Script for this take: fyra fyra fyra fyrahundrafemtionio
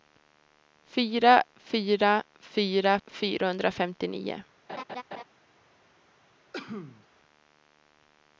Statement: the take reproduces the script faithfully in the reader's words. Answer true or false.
true